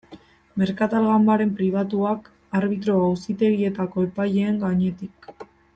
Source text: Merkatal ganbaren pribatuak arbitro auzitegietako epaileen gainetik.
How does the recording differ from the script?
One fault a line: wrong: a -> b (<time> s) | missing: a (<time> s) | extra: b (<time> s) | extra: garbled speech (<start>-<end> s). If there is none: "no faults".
no faults